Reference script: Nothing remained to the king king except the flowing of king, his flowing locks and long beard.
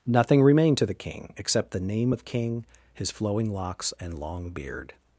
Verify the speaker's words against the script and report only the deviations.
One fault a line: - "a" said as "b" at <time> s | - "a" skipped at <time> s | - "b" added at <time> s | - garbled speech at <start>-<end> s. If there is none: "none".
- "king" skipped at 1.3 s
- "flowing" said as "name" at 1.8 s